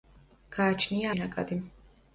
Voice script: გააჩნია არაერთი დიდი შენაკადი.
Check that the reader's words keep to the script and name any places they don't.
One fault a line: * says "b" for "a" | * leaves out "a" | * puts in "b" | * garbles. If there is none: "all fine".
* leaves out "არაერთი დიდი"